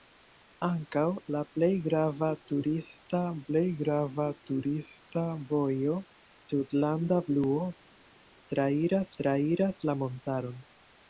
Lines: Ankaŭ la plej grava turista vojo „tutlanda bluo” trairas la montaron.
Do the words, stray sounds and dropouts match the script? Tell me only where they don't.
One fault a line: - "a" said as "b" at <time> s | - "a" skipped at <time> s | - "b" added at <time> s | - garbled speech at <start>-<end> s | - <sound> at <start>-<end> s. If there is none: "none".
- "plej grava turista" added at 3.5 s
- "trairas" added at 9.2 s